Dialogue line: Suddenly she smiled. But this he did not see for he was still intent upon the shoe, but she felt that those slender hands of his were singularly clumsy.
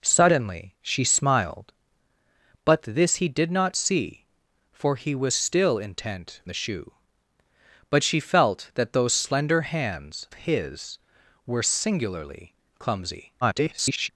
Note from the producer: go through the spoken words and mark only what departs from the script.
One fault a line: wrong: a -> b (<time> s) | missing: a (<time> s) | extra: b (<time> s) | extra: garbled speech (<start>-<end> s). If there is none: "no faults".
missing: upon (6.4 s)
missing: of (10.3 s)
extra: garbled speech (13.4-14.1 s)